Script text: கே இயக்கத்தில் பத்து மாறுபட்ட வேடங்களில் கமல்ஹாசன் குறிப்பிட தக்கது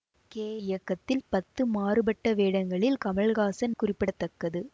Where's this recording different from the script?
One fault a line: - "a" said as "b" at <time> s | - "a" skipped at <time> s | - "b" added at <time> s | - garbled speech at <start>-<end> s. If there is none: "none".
none